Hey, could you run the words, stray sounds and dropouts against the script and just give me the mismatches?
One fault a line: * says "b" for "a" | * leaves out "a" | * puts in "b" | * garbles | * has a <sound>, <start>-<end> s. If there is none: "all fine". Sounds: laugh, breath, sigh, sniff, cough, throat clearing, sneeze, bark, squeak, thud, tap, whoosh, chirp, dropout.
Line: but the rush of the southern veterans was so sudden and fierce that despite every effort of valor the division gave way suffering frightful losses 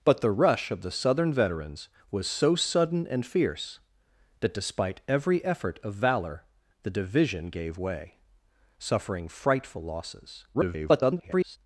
* garbles